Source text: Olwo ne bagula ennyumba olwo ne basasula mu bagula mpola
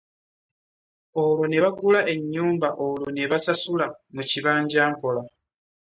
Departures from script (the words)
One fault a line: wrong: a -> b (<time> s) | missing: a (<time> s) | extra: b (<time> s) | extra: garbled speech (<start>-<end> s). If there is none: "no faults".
wrong: bagula -> kibanja (4.3 s)